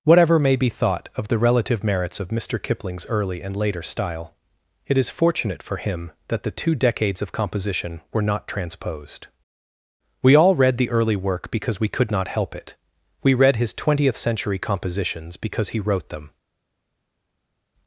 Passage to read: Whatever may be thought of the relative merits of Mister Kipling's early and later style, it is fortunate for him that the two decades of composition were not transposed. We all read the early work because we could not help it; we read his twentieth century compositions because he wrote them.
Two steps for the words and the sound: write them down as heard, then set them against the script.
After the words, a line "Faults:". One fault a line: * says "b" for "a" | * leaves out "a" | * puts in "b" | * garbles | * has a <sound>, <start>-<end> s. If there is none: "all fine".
Whatever may be thought of the relative merits of Mister Kipling's early and later style, it is fortunate for him that the two decades of composition were not transposed. We all read the early work because we could not help it; we read his twentieth century compositions because he wrote them.
Faults:
all fine